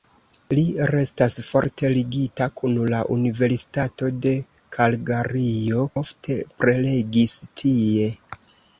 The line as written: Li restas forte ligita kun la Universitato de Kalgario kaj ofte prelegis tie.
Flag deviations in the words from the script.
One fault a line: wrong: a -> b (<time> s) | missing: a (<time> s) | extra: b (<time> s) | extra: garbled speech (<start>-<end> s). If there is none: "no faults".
missing: kaj (5.8 s)